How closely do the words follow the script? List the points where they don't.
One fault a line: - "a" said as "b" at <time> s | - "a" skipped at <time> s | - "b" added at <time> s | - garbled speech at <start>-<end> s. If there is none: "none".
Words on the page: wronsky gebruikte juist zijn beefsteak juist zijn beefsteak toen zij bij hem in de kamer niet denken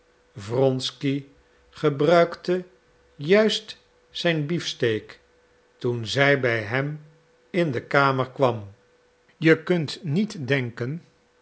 - "juist zijn beefsteak" skipped at 5.2 s
- "kwam je kunt" added at 8.3 s